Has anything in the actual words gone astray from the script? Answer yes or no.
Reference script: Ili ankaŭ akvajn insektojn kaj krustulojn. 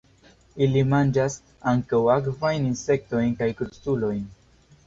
yes